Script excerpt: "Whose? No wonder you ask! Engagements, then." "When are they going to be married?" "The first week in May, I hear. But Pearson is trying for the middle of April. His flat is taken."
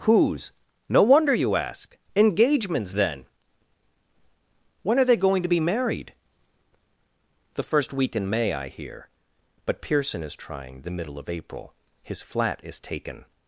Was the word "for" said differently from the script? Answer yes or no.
yes